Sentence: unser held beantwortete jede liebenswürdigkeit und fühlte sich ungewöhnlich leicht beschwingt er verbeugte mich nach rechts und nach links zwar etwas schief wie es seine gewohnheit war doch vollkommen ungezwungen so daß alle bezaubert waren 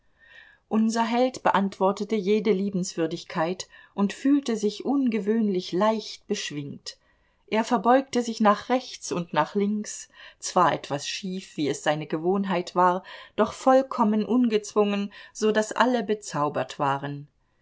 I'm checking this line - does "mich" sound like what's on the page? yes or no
no